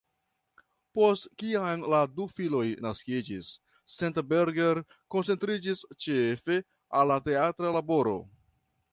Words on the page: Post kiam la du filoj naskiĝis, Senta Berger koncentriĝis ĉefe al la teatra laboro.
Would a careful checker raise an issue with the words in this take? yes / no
no